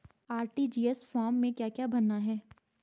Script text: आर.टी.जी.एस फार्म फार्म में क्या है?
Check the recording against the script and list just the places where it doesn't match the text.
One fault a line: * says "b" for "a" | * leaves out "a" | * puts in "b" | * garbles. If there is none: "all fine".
* leaves out "फार्म"
* puts in "क्या भरना"